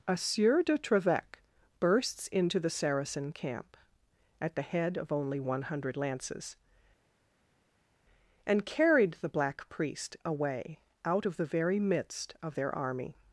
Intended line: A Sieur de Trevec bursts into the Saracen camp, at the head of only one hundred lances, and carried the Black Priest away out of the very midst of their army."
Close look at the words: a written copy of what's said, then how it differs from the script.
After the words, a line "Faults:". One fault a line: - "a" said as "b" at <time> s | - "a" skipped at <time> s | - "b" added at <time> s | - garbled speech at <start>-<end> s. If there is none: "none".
A Sieur de Trevec bursts into the Saracen camp, at the head of only one hundred lances, and carried the Black Priest away out of the very midst of their army."
Faults:
none